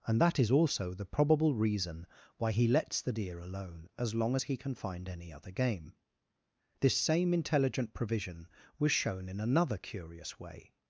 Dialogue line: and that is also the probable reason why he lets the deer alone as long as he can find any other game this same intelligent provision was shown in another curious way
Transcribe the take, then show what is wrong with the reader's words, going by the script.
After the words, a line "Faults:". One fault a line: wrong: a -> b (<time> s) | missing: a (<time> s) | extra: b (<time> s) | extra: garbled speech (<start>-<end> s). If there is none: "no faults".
and that is also the probable reason why he lets the deer alone as long as he can find any other game this same intelligent provision was shown in another curious way
Faults:
no faults